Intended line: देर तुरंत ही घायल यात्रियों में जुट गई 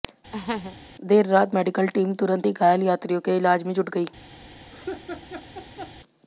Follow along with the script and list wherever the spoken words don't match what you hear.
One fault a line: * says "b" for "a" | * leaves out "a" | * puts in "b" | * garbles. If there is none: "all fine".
* puts in "रात मेडिकल टीम"
* puts in "के इलाज"